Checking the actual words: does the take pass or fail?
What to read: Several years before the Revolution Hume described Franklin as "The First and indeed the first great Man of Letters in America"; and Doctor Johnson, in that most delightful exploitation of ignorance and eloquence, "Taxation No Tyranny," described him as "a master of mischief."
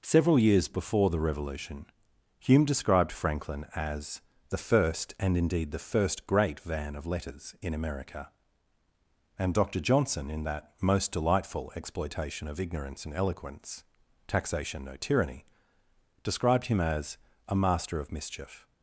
fail